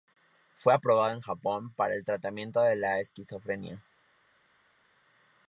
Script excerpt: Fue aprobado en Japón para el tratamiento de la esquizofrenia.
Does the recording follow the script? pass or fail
pass